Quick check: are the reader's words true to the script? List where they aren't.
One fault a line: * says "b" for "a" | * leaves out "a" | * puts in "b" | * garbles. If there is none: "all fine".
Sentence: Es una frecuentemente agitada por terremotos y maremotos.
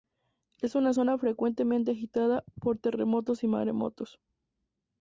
* puts in "zona"